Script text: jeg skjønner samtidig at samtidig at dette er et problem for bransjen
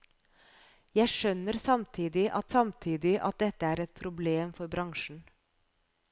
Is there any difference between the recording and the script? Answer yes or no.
no